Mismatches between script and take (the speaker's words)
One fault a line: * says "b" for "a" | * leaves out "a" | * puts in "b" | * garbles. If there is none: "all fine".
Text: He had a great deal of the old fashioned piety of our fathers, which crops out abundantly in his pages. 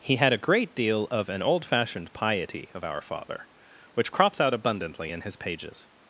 * says "an" for "the"
* says "father" for "fathers"